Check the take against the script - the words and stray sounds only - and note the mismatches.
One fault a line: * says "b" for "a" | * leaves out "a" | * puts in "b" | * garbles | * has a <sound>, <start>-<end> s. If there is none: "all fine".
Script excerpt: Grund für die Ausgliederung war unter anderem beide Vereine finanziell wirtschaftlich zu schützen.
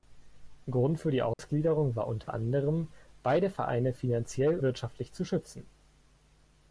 * has a dropout, 1.3-1.4 s
* has a dropout, 2.2-2.3 s